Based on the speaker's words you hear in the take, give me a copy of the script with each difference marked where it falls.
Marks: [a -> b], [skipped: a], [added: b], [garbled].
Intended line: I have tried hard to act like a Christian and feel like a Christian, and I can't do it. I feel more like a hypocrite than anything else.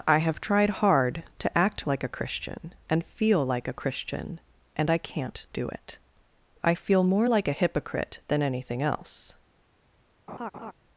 I have tried hard to act like a Christian and feel like a Christian, and I can't do it. I feel more like a hypocrite than anything else.